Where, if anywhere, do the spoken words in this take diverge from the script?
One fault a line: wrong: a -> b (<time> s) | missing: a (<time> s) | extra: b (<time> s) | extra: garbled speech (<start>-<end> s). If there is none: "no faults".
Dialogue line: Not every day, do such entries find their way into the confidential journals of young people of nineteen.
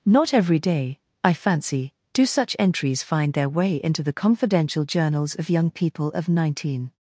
extra: I fancy (1.2 s)